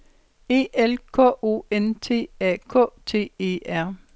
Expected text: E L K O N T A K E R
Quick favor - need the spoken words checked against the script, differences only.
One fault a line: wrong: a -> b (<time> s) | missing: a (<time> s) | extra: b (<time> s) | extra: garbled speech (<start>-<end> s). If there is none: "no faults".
extra: T (3.0 s)